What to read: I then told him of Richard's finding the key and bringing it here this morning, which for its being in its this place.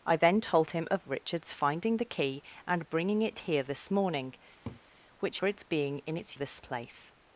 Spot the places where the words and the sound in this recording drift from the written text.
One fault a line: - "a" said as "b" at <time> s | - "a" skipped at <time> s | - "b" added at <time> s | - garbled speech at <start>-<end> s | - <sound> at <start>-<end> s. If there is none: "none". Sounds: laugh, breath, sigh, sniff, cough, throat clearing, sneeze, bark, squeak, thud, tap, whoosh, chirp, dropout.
- laugh at 4.6-4.8 s